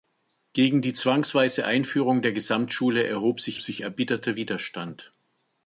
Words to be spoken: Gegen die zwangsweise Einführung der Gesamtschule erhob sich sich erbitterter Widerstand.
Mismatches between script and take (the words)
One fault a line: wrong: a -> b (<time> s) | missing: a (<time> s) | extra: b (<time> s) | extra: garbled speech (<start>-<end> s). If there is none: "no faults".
no faults